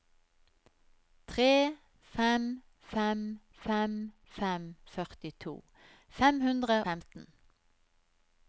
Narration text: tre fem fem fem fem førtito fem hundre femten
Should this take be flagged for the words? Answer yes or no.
no